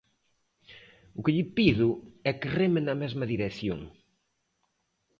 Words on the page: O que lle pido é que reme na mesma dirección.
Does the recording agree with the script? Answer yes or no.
yes